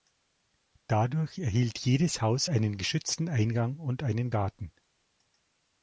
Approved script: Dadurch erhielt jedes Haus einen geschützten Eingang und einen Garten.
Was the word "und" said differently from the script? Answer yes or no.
no